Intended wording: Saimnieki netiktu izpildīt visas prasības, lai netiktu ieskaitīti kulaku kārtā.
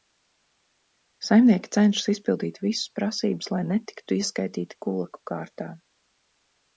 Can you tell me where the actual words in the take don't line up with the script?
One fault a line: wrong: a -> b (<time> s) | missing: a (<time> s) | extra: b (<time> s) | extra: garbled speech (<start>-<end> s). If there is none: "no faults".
wrong: netiktu -> cenšas (1.8 s)